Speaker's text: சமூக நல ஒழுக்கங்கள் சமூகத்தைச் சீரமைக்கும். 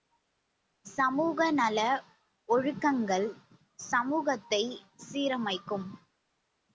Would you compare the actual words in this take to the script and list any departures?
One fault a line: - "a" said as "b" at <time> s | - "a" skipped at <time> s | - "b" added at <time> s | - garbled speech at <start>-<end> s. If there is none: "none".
none